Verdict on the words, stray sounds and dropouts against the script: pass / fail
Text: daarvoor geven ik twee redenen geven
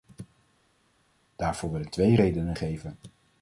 fail